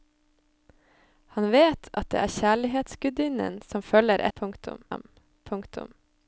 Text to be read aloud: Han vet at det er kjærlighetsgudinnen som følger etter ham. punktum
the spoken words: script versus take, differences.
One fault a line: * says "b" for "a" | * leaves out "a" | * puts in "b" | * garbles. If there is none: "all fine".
* says "punktum" for "etter"